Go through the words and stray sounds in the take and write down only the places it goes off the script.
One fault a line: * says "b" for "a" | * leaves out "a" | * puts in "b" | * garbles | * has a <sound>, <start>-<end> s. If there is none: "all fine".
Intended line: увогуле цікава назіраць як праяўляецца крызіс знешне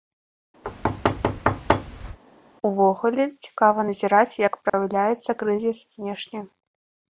* has a thud, 0.6-2.2 s
* has a dropout, 4.7-4.7 s